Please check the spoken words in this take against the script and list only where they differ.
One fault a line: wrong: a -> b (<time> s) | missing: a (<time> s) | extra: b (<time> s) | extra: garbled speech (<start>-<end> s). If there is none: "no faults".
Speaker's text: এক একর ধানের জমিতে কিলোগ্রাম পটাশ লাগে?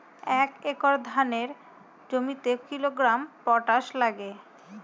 no faults